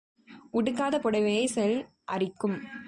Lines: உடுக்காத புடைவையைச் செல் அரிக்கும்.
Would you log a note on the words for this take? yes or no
no